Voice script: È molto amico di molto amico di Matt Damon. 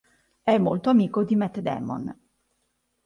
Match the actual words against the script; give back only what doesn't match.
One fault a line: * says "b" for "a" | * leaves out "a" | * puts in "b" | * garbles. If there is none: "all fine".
* leaves out "molto amico di"